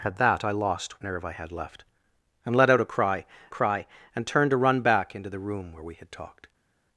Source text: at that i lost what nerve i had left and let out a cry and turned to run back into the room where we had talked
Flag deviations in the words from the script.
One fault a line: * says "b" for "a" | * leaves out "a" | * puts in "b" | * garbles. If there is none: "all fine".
* leaves out "what"
* puts in "cry"